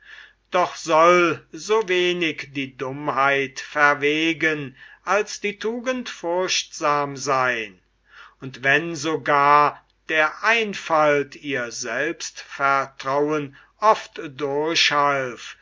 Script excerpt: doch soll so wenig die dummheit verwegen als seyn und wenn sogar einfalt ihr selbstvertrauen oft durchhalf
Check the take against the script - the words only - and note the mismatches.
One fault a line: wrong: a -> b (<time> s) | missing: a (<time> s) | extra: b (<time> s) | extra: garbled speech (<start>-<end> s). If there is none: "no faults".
extra: die tugend furchtsam (5.4 s)
extra: der (10.1 s)